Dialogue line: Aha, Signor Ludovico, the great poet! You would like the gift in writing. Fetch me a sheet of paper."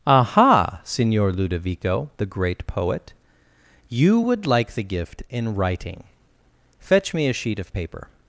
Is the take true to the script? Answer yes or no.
yes